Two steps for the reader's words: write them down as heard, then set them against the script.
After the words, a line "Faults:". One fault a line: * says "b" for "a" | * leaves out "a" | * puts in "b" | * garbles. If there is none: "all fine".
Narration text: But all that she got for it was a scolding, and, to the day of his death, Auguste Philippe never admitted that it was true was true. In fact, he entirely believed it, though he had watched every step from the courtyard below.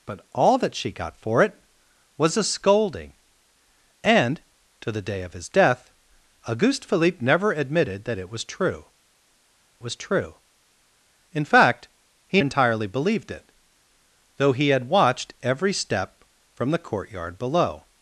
But all that she got for it was a scolding, and, to the day of his death, Auguste Philippe never admitted that it was true was true. In fact, he entirely believed it, though he had watched every step from the courtyard below.
Faults:
all fine